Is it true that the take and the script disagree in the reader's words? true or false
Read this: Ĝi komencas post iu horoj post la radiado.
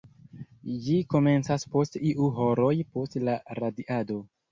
false